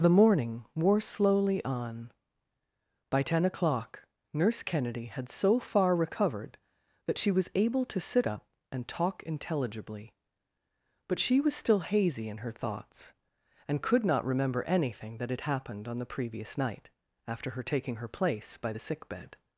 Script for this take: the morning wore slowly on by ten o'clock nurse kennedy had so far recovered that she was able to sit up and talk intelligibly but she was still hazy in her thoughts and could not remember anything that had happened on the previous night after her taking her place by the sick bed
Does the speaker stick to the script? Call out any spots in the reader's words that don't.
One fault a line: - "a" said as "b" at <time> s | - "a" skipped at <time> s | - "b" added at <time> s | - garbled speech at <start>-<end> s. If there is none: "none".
none